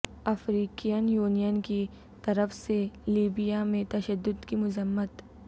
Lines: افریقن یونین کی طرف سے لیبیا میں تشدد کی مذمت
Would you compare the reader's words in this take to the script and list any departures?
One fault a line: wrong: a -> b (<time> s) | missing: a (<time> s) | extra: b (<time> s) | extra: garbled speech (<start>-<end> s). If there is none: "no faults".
no faults